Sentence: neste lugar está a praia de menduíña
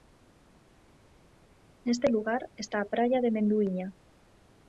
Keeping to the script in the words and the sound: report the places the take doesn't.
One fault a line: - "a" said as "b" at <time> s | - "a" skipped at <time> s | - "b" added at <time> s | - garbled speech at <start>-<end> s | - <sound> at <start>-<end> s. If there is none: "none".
none